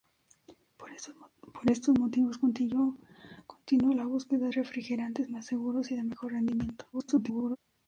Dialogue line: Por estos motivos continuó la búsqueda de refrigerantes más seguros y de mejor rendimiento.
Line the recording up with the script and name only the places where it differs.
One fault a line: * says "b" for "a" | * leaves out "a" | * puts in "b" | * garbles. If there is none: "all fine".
* leaves out "de"
* garbles